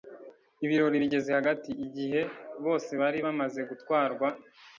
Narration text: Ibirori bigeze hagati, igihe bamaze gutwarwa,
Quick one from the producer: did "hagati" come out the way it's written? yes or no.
yes